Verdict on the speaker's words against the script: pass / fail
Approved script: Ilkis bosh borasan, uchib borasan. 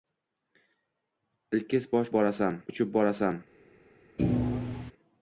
pass